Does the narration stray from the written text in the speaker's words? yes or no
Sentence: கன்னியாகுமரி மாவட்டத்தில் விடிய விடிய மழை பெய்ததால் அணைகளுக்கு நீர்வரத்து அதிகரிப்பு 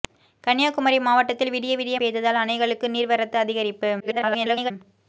yes